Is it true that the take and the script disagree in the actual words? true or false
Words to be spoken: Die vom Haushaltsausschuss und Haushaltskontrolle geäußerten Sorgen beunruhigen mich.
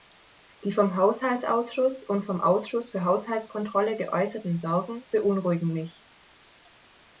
true